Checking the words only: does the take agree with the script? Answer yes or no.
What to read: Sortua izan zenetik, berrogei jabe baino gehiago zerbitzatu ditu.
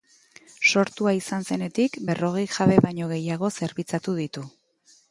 yes